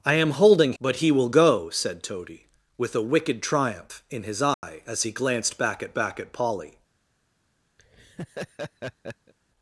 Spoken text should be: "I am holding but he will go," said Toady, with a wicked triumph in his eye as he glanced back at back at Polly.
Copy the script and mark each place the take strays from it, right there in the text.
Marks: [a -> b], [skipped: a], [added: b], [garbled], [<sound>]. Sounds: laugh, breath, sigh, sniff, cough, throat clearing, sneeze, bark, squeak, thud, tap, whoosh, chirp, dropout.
"I am holding but he will go," said Toady, with a wicked triumph in his eye [dropout] as he glanced back at back at Polly. [laugh]